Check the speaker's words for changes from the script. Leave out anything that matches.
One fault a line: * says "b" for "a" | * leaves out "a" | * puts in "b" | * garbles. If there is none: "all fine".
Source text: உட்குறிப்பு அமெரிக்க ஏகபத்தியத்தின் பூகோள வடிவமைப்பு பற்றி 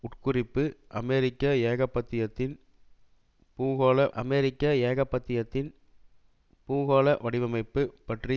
* puts in "அமெரிக்க ஏகபத்தியத்தின் பூகோள"